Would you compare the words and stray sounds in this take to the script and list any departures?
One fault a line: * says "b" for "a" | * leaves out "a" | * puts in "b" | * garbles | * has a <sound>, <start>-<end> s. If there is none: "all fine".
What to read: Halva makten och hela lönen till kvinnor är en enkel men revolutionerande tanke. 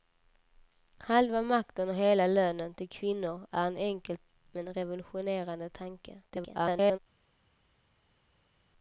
* garbles